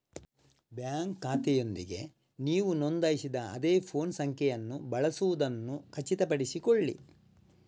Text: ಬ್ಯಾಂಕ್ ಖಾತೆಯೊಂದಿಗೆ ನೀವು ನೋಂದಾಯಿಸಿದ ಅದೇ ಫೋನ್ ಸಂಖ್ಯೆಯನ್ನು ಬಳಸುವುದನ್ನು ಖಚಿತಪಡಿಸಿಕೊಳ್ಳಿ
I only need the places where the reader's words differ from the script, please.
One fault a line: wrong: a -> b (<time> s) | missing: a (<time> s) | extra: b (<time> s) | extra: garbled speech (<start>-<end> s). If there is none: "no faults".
no faults